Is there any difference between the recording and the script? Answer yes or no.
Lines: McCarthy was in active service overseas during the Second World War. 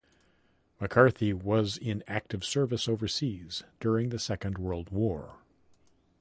no